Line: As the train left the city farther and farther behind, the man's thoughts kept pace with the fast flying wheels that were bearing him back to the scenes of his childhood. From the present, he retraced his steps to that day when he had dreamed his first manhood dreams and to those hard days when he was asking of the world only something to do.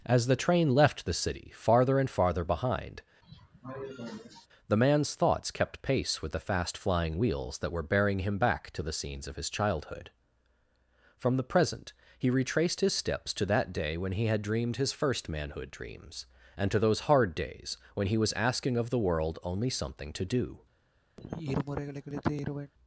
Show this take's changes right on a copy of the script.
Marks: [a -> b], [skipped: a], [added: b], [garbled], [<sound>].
As the train left the city farther and farther behind, [cough] the man's thoughts kept pace with the fast flying wheels that were bearing him back to the scenes of his childhood. From the present, he retraced his steps to that day when he had dreamed his first manhood dreams and to those hard days when he was asking of the world only something to do. [sigh]